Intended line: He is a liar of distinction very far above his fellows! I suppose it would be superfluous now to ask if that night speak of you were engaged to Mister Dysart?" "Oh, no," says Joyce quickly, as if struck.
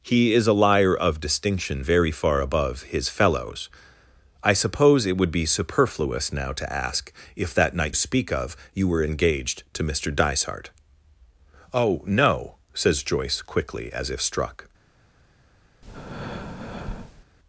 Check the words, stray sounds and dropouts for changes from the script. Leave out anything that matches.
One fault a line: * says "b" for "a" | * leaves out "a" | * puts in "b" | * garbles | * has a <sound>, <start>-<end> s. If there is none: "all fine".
* has a breath, 15.8-17.2 s